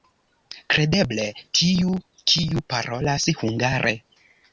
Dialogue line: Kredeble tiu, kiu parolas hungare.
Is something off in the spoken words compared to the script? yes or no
no